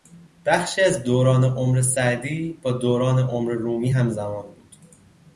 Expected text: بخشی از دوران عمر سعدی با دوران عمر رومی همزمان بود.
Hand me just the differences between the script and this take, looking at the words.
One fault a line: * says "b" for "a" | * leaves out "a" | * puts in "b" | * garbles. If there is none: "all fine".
all fine